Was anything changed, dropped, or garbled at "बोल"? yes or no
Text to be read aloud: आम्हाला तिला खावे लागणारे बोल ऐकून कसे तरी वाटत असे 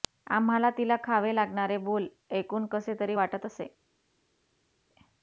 no